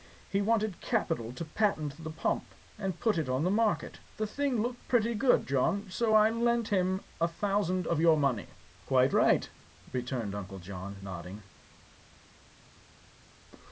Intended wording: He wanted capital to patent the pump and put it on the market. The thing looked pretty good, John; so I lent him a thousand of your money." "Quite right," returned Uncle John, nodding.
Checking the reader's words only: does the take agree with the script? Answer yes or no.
yes